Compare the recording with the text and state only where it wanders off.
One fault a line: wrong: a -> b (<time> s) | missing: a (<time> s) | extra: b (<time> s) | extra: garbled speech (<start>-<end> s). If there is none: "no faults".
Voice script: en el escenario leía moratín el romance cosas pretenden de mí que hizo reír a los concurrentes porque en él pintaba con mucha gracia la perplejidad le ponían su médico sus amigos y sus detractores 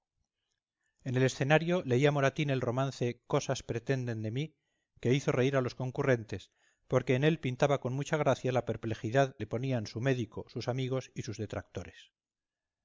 no faults